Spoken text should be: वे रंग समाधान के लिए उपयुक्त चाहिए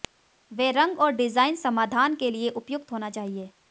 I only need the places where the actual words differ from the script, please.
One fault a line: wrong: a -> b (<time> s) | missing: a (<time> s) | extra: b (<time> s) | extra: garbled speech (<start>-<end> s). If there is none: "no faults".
extra: और डिजाइन (1.0 s)
extra: होना (2.9 s)